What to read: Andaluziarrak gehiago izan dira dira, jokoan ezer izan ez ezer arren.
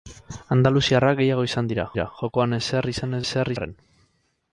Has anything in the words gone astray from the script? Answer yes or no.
no